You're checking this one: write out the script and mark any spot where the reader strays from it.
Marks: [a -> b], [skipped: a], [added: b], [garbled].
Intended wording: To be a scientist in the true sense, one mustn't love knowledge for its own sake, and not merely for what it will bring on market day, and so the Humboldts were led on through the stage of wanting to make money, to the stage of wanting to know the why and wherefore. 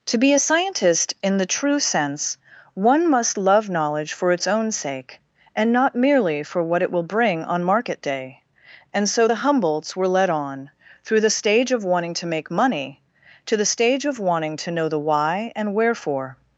To be a scientist in the true sense, one [mustn't -> must] love knowledge for its own sake, and not merely for what it will bring on market day, and so the Humboldts were led on through the stage of wanting to make money, to the stage of wanting to know the why and wherefore.